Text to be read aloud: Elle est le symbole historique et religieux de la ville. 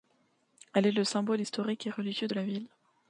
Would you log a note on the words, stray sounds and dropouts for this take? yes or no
no